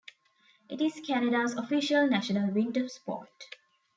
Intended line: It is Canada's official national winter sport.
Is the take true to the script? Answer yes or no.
yes